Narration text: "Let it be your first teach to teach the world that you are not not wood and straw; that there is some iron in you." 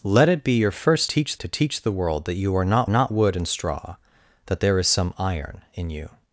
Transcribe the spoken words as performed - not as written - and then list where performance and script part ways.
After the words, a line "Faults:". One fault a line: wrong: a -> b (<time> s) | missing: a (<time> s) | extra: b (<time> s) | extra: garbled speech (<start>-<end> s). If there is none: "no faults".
"Let it be your first teach to teach the world that you are not not wood and straw; that there is some iron in you."
Faults:
no faults